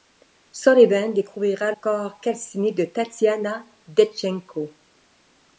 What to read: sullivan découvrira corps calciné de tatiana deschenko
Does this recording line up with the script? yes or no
yes